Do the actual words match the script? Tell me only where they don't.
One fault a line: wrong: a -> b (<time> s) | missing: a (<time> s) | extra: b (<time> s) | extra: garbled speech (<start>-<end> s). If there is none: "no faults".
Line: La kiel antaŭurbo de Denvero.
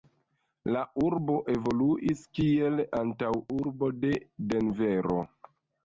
extra: urbo evoluis (1.1 s)